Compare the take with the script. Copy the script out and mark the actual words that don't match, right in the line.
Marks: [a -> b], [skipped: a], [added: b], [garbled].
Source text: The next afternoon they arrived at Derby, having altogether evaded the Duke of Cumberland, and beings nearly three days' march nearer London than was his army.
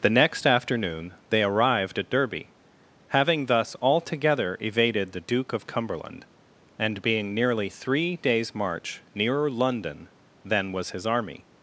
The next afternoon they arrived at Derby, having [added: thus] altogether evaded the Duke of Cumberland, and [beings -> being] nearly three days' march nearer London than was his army.